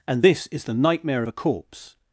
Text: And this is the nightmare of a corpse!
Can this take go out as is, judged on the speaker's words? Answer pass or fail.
pass